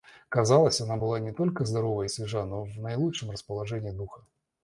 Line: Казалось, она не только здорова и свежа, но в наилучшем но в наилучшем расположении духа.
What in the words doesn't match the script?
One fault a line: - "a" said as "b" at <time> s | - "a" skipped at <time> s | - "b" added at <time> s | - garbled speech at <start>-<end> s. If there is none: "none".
- "была" added at 1.0 s
- "но в наилучшем" skipped at 3.3 s